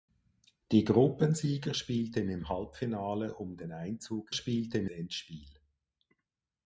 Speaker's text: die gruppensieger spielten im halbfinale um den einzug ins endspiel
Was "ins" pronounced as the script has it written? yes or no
no